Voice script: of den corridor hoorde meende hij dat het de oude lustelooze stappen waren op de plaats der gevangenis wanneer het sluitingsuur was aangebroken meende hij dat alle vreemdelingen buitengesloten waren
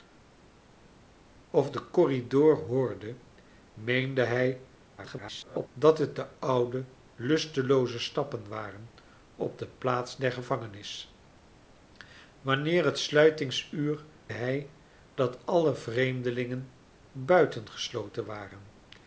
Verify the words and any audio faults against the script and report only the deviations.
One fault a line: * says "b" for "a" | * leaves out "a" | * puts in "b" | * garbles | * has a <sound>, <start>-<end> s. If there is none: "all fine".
* garbles
* leaves out "was aangebroken meende"